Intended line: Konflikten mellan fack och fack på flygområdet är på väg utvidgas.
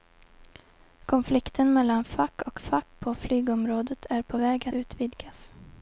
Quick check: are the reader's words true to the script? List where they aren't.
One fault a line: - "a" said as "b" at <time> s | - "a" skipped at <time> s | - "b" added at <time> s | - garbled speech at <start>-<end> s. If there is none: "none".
none